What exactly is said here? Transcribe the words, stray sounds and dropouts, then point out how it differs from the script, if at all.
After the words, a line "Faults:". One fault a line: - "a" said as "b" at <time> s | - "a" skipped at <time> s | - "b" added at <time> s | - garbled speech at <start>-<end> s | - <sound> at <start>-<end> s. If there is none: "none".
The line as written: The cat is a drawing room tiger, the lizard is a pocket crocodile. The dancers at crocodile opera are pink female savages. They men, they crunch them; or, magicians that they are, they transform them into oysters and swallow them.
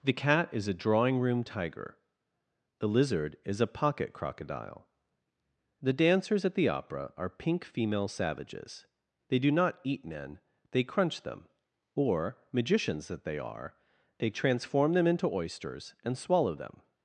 The cat is a drawing room tiger, the lizard is a pocket crocodile. The dancers at the opera are pink female savages. They do not eat men, they crunch them; or, magicians that they are, they transform them into oysters and swallow them.
Faults:
- "crocodile" said as "the" at 6.5 s
- "do not eat" added at 9.4 s